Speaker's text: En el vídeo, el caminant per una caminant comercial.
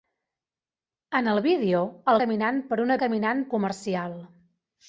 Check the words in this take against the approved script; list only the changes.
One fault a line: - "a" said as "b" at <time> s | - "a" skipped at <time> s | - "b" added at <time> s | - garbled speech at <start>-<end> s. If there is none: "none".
none